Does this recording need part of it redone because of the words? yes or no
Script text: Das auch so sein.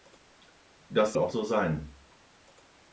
no